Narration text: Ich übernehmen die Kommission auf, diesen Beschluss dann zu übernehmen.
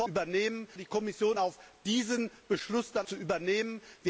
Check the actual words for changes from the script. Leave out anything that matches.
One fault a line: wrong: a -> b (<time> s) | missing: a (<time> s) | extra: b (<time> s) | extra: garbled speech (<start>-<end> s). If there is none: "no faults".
no faults